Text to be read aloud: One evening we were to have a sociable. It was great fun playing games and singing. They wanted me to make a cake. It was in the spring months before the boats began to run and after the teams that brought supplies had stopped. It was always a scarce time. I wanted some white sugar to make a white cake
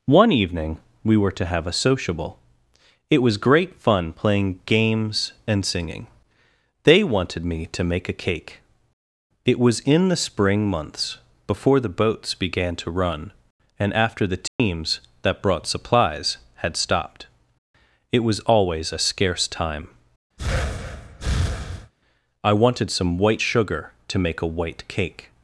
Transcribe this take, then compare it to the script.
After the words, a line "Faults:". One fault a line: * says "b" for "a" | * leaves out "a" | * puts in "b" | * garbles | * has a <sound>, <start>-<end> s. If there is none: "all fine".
One evening we were to have a sociable. It was great fun playing games and singing. They wanted me to make a cake. It was in the spring months before the boats began to run and after the teams that brought supplies had stopped. It was always a scarce time. I wanted some white sugar to make a white cake
Faults:
* has a dropout, 14.5-14.6 s
* has a breath, 20.4-21.9 s